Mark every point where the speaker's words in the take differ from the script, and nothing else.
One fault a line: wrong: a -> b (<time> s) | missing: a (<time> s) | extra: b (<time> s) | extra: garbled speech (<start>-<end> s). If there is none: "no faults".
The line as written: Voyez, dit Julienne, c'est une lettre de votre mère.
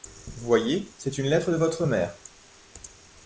missing: dit Julienne (0.9 s)